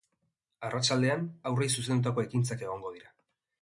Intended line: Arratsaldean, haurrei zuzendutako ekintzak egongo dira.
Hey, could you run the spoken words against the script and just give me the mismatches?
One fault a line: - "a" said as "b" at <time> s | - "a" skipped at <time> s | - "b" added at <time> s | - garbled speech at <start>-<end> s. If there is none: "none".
none